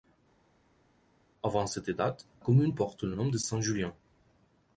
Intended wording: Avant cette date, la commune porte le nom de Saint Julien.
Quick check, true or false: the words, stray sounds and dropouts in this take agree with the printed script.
false